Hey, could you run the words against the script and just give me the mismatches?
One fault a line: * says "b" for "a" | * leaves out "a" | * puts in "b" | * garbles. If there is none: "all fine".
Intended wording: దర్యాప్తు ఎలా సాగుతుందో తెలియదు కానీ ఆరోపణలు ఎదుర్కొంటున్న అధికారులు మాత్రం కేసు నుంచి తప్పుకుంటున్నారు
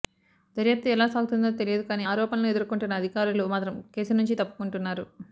all fine